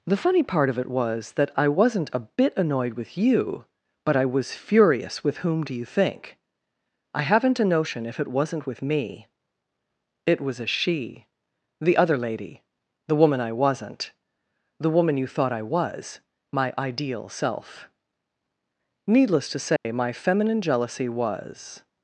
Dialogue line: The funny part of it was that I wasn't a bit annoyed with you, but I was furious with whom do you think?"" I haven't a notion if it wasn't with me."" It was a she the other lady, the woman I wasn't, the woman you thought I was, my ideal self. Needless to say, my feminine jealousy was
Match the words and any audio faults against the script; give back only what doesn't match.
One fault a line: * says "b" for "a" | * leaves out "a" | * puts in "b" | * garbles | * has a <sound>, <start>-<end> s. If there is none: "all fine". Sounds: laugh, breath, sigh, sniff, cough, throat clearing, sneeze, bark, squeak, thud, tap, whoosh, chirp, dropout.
* has a dropout, 19.8-19.9 s